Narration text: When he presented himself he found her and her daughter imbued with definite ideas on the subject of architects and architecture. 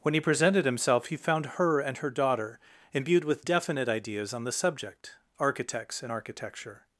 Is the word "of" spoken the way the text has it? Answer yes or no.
no